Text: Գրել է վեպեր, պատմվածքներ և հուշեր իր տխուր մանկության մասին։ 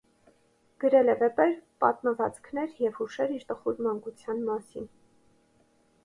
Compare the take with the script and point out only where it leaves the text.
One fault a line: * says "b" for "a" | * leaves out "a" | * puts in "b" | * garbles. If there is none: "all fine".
all fine